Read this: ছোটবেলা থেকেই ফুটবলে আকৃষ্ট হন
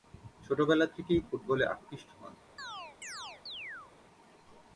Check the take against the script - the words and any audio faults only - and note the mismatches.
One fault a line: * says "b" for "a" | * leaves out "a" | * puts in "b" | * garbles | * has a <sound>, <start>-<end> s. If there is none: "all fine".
* has a chirp, 2.6-3.9 s